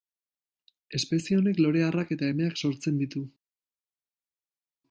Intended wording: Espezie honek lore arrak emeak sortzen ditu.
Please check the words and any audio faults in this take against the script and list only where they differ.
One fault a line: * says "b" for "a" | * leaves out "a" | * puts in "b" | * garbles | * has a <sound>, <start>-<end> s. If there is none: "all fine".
* puts in "eta"